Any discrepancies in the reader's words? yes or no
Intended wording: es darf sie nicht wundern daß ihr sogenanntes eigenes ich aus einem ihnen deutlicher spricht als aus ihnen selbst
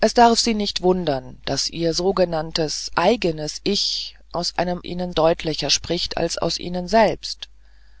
no